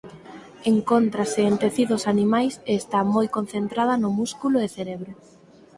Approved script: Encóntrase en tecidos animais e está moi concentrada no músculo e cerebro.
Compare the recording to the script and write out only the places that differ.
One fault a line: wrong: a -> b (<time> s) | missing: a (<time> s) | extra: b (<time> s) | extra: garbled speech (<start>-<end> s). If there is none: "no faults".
no faults